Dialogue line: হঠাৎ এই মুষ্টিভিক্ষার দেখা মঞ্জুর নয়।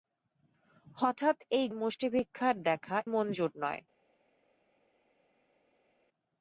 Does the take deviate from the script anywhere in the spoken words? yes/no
no